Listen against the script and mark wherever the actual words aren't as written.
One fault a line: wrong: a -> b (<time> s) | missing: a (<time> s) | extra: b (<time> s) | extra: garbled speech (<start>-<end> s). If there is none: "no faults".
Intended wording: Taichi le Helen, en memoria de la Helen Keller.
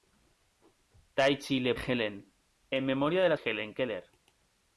no faults